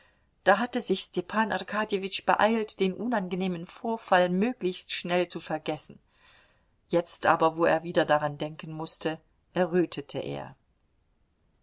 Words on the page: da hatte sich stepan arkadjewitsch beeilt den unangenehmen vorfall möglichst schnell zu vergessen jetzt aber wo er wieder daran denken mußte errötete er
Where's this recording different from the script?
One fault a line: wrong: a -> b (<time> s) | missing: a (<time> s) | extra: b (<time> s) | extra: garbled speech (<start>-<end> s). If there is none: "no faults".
no faults